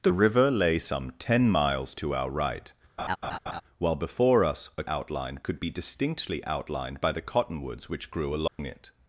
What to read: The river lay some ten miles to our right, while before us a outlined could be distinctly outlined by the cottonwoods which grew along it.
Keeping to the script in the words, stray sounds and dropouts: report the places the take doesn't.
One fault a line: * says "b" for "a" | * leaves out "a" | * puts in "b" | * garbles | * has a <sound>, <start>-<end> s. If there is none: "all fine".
* has a laugh, 3.0-3.6 s
* has a dropout, 8.5-8.6 s